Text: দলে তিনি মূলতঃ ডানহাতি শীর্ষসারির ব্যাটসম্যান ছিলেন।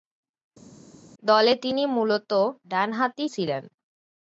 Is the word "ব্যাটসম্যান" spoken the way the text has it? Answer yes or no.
no